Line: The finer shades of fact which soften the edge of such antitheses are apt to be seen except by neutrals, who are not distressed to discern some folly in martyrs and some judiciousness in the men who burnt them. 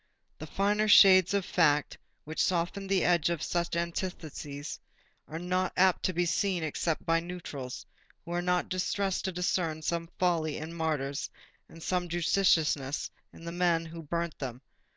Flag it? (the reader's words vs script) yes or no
yes